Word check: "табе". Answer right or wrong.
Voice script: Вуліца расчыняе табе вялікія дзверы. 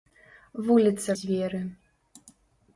wrong